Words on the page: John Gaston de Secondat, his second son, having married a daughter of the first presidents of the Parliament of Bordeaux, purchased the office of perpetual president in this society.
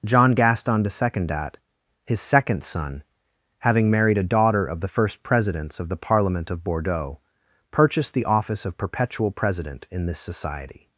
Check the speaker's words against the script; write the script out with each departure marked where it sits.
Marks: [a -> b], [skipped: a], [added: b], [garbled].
John Gaston de Secondat, his second son, having married a daughter of the first presidents of the Parliament of Bordeaux, purchased the office of perpetual president in this society.